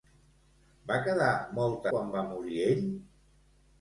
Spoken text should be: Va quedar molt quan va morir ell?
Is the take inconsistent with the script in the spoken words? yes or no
no